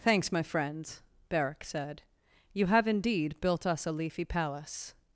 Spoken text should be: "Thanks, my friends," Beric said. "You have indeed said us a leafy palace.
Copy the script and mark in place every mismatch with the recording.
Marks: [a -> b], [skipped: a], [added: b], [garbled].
"Thanks, my friends," Beric said. "You have indeed [said -> built] us a leafy palace.